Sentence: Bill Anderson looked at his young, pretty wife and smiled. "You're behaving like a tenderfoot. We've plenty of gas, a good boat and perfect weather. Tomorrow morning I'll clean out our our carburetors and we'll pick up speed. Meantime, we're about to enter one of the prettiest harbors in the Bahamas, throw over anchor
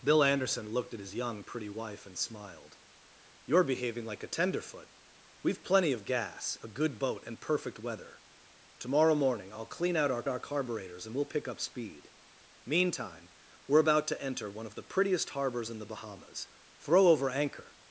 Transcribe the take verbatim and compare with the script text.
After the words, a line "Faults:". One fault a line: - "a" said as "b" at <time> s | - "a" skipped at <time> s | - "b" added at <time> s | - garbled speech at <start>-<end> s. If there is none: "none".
Bill Anderson looked at his young, pretty wife and smiled. "You're behaving like a tenderfoot. We've plenty of gas, a good boat and perfect weather. Tomorrow morning I'll clean out our our carburetors and we'll pick up speed. Meantime, we're about to enter one of the prettiest harbors in the Bahamas, throw over anchor
Faults:
none